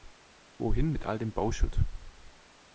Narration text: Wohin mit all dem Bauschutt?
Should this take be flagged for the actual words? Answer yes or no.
no